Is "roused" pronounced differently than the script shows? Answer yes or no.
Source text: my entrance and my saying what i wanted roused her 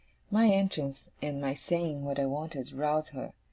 no